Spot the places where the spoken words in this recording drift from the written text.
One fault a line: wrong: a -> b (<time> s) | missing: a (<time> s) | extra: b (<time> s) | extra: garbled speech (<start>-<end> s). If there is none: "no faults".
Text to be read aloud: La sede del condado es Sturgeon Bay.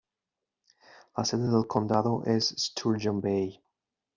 no faults